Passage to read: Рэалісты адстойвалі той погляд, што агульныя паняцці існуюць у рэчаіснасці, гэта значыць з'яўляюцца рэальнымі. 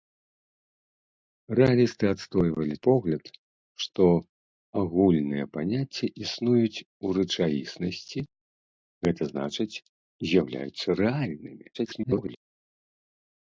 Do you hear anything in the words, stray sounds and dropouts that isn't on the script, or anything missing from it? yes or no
yes